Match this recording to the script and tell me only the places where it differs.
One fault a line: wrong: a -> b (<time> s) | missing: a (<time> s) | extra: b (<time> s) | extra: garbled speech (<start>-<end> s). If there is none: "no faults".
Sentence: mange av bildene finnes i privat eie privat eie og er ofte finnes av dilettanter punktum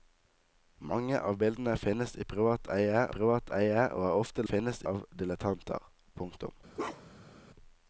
no faults